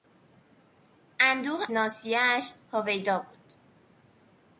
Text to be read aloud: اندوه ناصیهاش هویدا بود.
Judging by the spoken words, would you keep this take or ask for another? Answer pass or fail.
pass